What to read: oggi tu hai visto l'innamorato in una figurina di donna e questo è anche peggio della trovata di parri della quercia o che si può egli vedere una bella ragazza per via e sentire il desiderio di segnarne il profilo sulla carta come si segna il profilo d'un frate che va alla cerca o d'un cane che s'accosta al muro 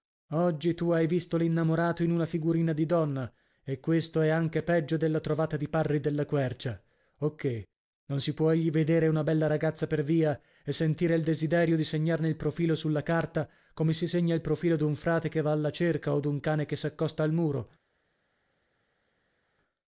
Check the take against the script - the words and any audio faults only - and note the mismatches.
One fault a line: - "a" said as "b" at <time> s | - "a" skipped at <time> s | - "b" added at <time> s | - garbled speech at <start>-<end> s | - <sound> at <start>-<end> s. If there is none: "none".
- "non" added at 8.1 s